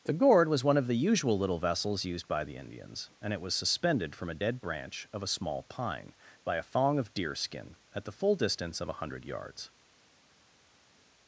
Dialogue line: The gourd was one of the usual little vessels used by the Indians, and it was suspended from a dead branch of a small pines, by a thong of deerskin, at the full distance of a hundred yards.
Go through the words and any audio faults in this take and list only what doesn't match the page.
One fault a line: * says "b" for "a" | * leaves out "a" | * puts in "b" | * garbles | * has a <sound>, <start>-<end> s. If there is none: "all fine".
* says "pine" for "pines"